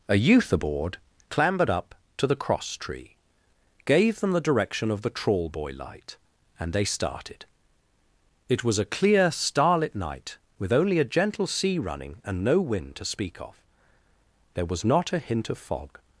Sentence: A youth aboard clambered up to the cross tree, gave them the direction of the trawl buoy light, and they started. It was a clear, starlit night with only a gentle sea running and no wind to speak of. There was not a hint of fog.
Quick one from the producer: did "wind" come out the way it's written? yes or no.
yes